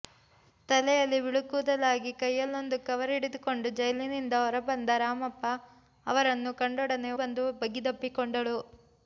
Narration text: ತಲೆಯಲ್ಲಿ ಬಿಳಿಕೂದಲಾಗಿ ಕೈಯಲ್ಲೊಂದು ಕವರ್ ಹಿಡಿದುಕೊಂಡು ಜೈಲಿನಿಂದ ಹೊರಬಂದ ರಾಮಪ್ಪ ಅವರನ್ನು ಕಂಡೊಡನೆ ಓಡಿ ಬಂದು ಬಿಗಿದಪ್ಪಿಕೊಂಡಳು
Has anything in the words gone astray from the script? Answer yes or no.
yes